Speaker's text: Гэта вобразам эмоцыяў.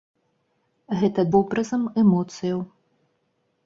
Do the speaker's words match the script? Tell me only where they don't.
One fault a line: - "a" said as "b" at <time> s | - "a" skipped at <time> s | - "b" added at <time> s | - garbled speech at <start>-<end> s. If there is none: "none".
none